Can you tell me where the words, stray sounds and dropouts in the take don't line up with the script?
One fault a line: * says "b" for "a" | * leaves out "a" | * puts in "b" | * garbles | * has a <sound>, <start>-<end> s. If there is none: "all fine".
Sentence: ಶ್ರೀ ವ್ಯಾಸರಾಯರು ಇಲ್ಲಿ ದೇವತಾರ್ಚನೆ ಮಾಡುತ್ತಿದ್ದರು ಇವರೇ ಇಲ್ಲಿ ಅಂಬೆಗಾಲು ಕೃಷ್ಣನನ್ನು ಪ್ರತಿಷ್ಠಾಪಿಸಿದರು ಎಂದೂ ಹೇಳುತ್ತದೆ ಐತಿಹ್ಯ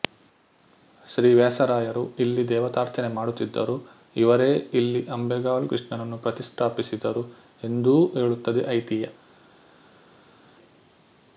all fine